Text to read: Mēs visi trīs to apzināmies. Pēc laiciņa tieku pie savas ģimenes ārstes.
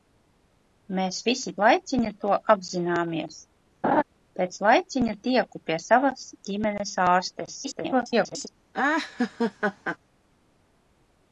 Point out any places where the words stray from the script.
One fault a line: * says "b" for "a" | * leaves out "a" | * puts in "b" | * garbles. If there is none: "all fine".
* says "laiciņa" for "trīs"
* garbles